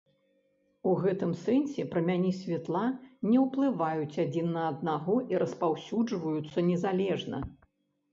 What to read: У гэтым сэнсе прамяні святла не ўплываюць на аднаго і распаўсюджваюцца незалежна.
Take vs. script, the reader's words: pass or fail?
fail